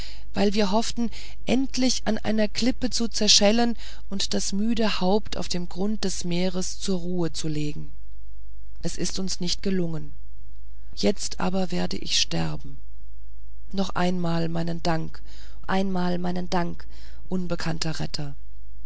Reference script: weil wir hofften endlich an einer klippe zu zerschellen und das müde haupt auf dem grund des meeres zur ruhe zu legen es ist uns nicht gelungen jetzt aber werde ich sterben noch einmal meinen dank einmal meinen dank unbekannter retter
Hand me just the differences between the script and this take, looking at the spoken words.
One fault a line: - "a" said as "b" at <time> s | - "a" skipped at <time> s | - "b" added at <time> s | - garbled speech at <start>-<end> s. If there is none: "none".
none